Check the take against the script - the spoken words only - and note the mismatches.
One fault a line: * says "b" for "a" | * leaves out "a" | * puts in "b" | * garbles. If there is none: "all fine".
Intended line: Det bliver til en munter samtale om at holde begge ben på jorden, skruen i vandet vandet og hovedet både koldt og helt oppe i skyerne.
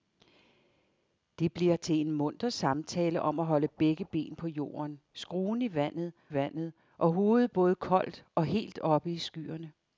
all fine